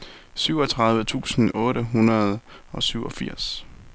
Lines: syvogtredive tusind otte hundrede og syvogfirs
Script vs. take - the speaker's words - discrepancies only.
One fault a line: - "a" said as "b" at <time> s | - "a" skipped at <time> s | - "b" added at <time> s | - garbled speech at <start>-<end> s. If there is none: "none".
none